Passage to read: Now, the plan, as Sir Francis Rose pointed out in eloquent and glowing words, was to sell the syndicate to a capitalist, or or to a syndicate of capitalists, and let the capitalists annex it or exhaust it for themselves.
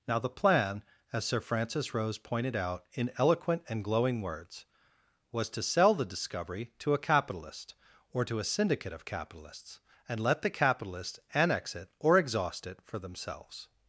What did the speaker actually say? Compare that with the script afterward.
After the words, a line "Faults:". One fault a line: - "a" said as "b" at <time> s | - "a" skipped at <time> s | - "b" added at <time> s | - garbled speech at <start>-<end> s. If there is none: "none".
Now, the plan, as Sir Francis Rose pointed out in eloquent and glowing words, was to sell the discovery to a capitalist, or to a syndicate of capitalists, and let the capitalists annex it or exhaust it for themselves.
Faults:
- "syndicate" said as "discovery" at 6.1 s
- "or" skipped at 8.3 s